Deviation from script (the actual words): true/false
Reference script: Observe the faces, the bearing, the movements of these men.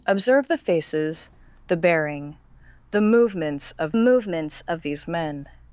true